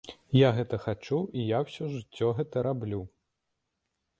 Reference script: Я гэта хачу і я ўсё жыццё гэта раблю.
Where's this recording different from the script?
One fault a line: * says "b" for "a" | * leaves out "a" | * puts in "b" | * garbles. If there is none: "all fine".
all fine